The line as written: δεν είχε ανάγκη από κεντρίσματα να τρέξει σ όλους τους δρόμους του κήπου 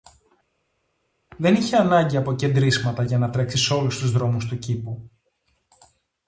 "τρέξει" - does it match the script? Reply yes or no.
yes